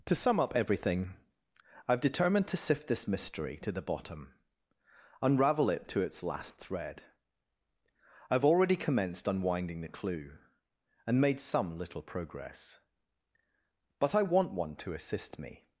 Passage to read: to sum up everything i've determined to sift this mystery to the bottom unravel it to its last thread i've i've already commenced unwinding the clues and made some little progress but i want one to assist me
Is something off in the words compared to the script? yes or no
yes